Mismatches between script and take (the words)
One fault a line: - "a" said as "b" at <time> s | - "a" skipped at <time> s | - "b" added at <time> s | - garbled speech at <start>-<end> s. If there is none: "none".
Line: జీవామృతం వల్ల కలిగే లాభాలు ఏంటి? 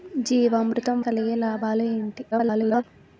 - "వల్ల" skipped at 1.0 s
- garbled speech at 2.3-2.8 s